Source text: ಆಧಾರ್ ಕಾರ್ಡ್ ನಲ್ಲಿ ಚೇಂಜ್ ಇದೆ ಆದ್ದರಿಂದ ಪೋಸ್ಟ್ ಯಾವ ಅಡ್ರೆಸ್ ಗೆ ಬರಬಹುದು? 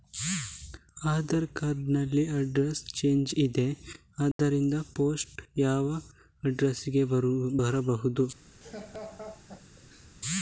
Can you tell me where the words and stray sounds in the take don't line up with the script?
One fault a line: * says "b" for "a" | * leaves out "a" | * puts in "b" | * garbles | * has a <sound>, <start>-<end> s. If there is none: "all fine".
* puts in "ಅಡ್ರೆಸ್"
* has a dropout, 4.3-4.4 s
* has a laugh, 8.6-10.1 s